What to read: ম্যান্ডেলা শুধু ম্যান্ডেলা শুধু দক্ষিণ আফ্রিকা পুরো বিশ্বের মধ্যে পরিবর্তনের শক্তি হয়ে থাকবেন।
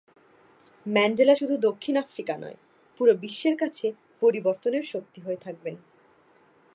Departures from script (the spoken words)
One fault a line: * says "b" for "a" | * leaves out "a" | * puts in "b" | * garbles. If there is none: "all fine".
* leaves out "ম্যান্ডেলা শুধু"
* puts in "নয়"
* says "কাছে" for "মধ্যে"